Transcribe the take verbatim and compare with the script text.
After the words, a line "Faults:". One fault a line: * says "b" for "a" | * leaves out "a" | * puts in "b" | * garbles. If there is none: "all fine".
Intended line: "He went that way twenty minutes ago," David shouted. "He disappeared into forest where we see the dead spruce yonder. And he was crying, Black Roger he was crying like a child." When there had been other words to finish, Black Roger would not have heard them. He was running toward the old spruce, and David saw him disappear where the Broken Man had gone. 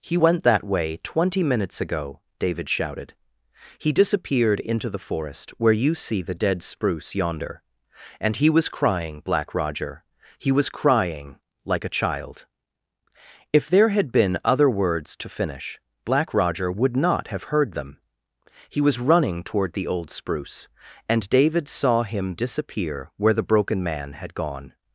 "He went that way twenty minutes ago," David shouted. "He disappeared into the forest where you see the dead spruce yonder. And he was crying, Black Roger he was crying like a child." If there had been other words to finish, Black Roger would not have heard them. He was running toward the old spruce, and David saw him disappear where the Broken Man had gone.
Faults:
* puts in "the"
* says "you" for "we"
* says "If" for "When"